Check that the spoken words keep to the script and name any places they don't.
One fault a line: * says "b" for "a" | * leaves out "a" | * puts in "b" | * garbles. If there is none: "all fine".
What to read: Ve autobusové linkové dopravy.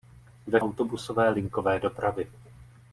all fine